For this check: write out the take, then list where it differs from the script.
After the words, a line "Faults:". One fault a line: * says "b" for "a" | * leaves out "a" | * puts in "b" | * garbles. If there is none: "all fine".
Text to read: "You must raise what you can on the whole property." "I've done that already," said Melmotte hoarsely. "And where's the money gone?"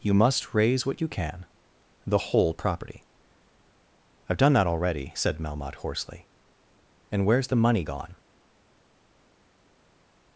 "You must raise what you can the whole property." "I've done that already," said Melmotte hoarsely. "And where's the money gone?"
Faults:
* leaves out "on"